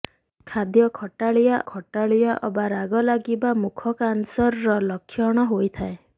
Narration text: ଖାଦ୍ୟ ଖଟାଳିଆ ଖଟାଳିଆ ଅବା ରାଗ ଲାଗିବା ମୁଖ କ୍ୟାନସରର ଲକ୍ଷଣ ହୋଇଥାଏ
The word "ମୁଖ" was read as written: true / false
true